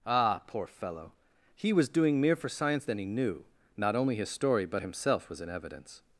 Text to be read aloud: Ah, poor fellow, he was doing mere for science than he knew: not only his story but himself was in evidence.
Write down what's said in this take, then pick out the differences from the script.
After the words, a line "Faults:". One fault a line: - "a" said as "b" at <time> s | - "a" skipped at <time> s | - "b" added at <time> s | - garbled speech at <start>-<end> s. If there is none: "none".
Ah, poor fellow, he was doing mere for science than he knew: not only his story but himself was in evidence.
Faults:
none